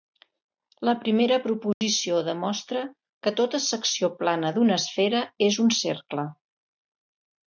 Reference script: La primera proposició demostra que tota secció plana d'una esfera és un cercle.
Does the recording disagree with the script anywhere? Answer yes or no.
no